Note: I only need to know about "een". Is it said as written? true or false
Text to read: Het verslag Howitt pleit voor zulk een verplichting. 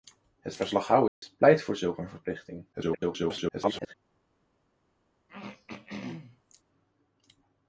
true